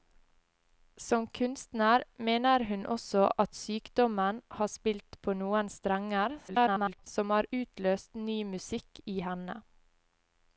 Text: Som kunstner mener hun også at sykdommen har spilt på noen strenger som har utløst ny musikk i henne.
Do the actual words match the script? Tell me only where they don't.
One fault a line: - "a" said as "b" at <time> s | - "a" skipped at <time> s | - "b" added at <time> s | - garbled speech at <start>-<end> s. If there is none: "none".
- garbled speech at 6.5-7.1 s